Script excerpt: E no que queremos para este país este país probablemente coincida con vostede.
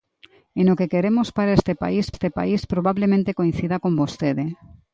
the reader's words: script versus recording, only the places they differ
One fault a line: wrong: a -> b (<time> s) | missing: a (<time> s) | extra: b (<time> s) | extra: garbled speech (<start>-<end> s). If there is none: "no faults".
no faults